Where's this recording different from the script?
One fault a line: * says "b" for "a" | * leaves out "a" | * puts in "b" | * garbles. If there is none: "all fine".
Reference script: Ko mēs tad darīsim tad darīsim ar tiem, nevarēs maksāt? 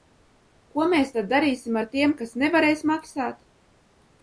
* leaves out "tad darīsim"
* puts in "kas"